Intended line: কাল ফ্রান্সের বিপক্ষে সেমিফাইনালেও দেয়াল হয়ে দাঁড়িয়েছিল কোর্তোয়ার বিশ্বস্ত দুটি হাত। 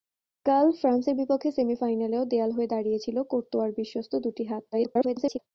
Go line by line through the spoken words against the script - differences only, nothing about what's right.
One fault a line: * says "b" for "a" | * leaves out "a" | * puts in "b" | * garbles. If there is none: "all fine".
* garbles